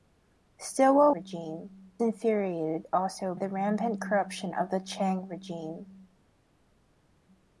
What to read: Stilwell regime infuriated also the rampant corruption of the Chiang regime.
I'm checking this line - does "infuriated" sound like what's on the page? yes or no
yes